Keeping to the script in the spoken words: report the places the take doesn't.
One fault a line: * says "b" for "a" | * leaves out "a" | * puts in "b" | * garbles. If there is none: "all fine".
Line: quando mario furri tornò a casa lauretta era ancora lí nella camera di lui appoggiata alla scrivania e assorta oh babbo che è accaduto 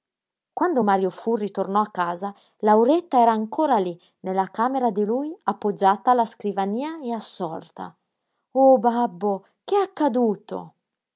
all fine